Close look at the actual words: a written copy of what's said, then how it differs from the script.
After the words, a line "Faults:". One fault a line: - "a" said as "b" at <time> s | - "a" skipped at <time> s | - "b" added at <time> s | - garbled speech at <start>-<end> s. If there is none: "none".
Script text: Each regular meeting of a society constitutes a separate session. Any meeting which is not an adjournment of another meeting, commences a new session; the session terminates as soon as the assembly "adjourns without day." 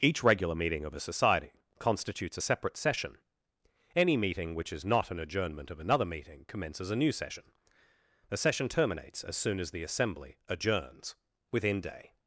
Each regular meeting of a society constitutes a separate session. Any meeting which is not an adjournment of another meeting, commences a new session; the session terminates as soon as the assembly "adjourns within day."
Faults:
- "without" said as "within" at 11.5 s